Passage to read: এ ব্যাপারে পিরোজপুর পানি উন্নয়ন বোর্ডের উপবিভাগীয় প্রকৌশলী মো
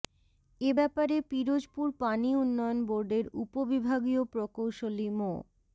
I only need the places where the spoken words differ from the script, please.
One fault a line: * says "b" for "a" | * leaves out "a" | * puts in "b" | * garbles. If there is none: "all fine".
all fine